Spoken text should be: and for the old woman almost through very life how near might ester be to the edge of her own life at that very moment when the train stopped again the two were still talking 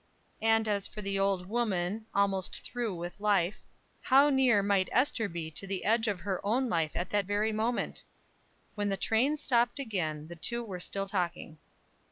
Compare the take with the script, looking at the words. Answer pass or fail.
fail